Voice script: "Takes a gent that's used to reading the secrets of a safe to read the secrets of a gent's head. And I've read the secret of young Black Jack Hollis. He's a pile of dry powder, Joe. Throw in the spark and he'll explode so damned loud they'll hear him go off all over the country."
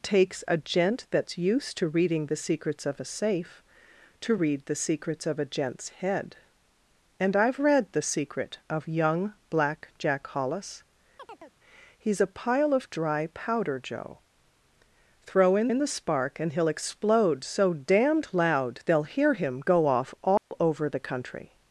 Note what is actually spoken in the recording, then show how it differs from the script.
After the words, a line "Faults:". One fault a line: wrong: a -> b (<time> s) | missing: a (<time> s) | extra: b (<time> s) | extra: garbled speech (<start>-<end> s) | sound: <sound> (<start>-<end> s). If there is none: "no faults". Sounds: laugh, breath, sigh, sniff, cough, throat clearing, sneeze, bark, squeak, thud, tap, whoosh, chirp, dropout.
"Takes a gent that's used to reading the secrets of a safe to read the secrets of a gent's head. And I've read the secret of young Black Jack Hollis. He's a pile of dry powder, Joe. Throw in in the spark and he'll explode so damned loud they'll hear him go off all over the country."
Faults:
sound: chirp (11.2-11.5 s)
extra: in (15.7 s)
sound: dropout (20.4-20.5 s)